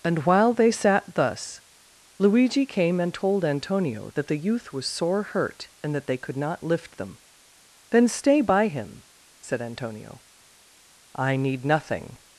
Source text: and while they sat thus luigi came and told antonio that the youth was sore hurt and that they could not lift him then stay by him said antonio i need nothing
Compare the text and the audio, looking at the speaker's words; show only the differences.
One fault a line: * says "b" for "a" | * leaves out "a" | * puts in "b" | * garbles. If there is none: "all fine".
* says "them" for "him"